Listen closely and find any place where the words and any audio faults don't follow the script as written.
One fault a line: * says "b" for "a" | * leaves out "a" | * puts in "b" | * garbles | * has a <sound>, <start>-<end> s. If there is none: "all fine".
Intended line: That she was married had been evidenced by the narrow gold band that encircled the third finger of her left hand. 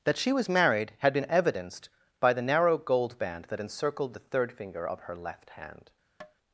* has a tap, 6.2-6.4 s